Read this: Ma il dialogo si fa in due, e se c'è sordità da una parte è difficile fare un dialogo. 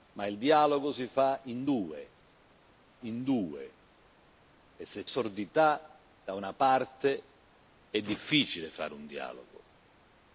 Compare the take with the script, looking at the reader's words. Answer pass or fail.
fail